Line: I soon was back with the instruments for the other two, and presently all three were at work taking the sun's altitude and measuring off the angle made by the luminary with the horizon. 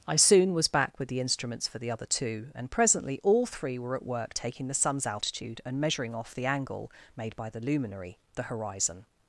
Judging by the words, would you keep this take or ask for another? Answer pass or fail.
fail